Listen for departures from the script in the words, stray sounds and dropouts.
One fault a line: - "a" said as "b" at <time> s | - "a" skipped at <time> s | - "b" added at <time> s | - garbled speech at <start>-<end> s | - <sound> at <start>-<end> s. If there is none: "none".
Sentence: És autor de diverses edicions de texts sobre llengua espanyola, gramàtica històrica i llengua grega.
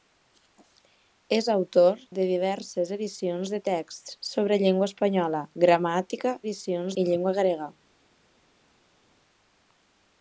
- "històrica" said as "edicions" at 6.4 s